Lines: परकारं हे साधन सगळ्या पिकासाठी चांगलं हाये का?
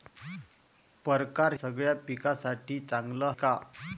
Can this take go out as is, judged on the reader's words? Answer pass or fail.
fail